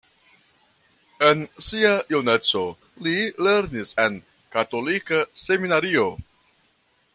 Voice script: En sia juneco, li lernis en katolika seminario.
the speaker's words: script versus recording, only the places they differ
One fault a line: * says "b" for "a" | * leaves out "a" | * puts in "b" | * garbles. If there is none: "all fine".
all fine